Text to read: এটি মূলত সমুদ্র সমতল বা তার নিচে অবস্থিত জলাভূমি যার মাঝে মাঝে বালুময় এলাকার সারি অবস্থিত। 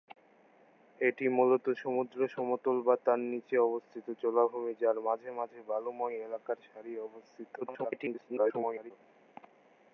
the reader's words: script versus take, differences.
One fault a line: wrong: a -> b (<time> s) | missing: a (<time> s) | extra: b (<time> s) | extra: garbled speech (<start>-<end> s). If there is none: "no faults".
extra: garbled speech (7.6-8.9 s)